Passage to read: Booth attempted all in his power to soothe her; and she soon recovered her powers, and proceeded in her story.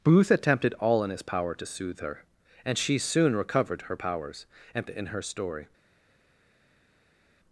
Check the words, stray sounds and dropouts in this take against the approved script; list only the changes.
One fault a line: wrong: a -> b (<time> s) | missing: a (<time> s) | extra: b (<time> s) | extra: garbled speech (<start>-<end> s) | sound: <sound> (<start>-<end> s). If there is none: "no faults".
missing: proceeded (4.9 s)